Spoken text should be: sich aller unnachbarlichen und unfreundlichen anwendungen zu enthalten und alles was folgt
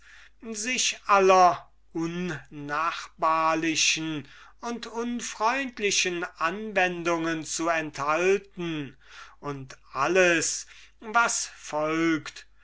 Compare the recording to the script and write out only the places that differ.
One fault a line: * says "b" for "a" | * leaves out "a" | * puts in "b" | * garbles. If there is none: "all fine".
all fine